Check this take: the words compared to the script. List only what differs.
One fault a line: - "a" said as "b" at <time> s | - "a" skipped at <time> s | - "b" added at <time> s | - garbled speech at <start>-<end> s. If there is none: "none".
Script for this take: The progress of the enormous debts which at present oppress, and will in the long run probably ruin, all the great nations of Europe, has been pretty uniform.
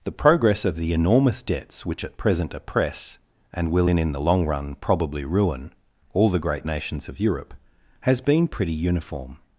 - "in" added at 4.0 s